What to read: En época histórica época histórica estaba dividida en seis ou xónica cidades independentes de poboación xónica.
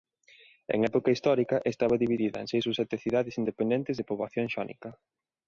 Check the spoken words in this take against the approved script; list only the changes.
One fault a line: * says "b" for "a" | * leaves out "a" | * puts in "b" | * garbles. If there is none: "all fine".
* leaves out "época histórica"
* says "sete" for "xónica"